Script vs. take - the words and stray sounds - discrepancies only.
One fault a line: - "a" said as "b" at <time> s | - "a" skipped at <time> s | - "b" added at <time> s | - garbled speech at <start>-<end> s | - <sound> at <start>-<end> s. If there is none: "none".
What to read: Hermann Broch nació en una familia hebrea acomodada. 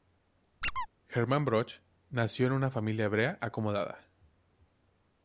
- squeak at 0.6-0.9 s